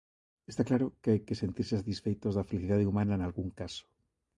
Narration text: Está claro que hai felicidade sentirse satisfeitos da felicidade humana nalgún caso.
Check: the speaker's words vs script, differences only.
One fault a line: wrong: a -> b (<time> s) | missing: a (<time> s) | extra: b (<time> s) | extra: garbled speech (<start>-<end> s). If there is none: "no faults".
wrong: felicidade -> que (1.3 s)